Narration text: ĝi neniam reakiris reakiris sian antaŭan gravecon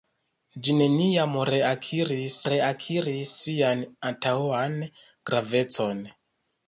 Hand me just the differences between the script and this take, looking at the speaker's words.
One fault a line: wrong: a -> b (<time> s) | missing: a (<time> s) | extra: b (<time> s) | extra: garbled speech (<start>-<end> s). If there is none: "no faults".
no faults